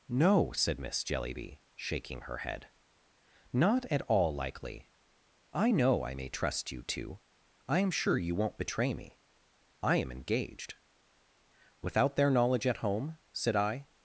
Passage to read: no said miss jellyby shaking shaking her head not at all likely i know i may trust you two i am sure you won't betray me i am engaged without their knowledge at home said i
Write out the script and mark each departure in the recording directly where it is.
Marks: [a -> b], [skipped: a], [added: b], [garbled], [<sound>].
no said miss jellyby shaking [skipped: shaking] her head not at all likely i know i may trust you two i am sure you won't betray me i am engaged without their knowledge at home said i